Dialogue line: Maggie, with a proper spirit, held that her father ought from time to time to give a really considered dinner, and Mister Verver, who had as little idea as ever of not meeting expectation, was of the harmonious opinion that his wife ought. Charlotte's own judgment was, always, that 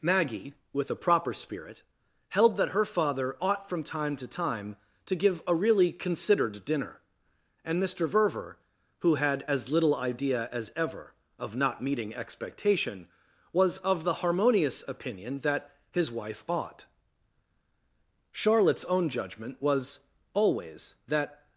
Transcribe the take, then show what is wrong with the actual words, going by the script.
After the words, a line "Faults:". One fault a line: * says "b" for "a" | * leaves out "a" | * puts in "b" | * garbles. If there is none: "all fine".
Maggie, with a proper spirit, held that her father ought from time to time to give a really considered dinner, and Mister Verver, who had as little idea as ever of not meeting expectation, was of the harmonious opinion that his wife ought. Charlotte's own judgment was, always, that
Faults:
all fine